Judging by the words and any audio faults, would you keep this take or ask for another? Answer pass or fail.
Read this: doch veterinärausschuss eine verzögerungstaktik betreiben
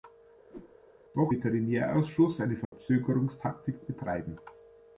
fail